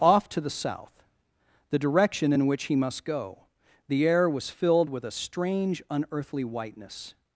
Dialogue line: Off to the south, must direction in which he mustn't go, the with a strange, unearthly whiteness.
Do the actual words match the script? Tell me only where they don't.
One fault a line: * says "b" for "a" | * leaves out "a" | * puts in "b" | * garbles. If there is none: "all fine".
* says "the" for "must"
* says "must" for "mustn't"
* puts in "air was filled"